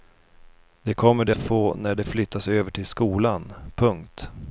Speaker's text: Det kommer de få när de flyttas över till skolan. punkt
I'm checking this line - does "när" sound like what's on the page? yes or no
yes